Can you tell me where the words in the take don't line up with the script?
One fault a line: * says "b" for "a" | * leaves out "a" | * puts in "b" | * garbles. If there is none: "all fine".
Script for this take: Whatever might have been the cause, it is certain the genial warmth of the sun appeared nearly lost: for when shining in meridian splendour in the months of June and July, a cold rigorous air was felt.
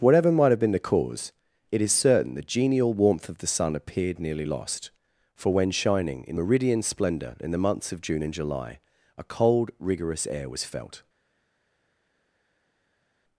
all fine